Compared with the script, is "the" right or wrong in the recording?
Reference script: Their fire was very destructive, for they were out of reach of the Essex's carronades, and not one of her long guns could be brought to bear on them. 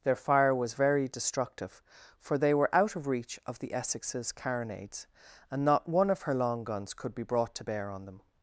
right